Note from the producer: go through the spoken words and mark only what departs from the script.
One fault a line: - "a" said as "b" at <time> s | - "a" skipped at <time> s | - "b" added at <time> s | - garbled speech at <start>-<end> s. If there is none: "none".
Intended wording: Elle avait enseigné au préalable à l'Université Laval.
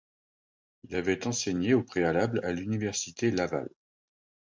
- "Elle" said as "Il" at 0.8 s